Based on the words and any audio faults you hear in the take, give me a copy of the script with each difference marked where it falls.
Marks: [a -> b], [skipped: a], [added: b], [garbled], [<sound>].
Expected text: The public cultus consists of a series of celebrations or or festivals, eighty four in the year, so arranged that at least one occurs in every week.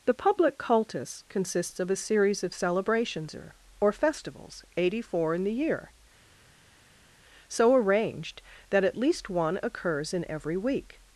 The public cultus consists of a series of celebrations or or festivals, eighty four in the year, so arranged that at least one occurs in every week.